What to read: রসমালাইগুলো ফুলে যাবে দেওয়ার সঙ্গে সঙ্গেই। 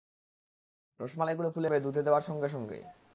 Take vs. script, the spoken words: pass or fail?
fail